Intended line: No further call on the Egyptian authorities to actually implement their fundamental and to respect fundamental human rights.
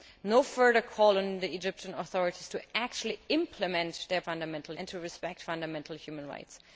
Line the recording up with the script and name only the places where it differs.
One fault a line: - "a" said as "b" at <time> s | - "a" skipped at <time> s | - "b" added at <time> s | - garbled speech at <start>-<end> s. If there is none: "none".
none